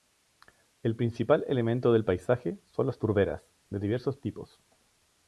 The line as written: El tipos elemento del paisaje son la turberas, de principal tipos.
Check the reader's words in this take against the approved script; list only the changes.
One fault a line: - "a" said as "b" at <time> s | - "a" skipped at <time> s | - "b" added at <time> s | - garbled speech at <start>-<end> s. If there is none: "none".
- "tipos" said as "principal" at 0.9 s
- "la" said as "las" at 2.9 s
- "principal" said as "diversos" at 3.8 s